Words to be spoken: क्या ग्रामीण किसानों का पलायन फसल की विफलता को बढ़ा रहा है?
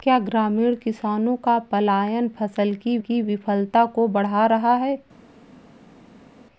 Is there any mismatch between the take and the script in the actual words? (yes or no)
yes